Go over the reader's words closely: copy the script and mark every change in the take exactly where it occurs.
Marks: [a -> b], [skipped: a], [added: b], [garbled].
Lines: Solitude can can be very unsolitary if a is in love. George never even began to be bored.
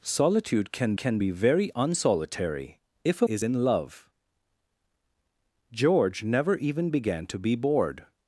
Solitude can can be very unsolitary if a is in love. George never even began to be bored.